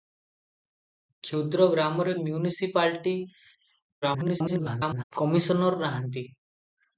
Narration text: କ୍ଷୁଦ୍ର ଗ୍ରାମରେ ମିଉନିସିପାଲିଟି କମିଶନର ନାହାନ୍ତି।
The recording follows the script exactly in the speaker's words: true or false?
false